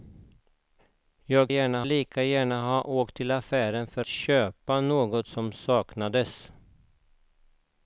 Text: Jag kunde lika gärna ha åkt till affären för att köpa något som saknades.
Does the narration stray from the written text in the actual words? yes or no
yes